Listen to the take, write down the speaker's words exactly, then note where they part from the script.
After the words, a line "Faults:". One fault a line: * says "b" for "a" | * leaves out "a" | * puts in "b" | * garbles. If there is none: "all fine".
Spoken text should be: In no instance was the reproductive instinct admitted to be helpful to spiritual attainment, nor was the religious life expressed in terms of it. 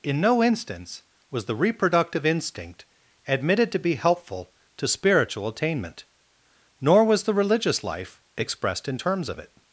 In no instance was the reproductive instinct admitted to be helpful to spiritual attainment, nor was the religious life expressed in terms of it.
Faults:
all fine